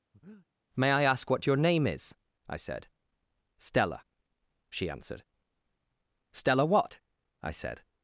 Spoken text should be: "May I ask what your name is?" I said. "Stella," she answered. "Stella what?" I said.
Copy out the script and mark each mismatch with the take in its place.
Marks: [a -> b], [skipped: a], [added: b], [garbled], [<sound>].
[breath] "May I ask what your name is?" I said. "Stella," she answered. "Stella what?" I said.